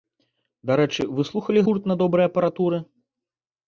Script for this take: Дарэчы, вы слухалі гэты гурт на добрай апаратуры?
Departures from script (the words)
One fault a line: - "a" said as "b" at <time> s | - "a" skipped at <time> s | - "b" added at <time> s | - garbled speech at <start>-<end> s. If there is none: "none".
- "гэты" skipped at 1.6 s